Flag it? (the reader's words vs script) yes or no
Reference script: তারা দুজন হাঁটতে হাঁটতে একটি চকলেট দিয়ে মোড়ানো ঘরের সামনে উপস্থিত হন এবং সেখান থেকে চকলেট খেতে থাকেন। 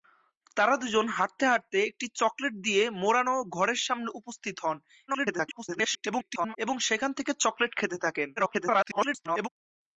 yes